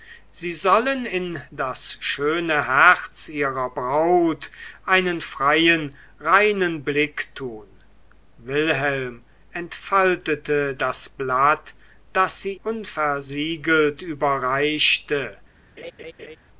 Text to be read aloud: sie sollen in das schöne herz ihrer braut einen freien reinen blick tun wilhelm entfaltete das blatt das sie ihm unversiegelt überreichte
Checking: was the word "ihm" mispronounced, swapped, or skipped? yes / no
yes